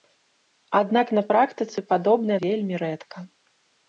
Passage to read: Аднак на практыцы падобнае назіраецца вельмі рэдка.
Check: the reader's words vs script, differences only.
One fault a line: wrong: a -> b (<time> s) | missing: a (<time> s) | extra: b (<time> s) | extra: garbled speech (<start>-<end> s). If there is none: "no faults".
missing: назіраецца (2.4 s)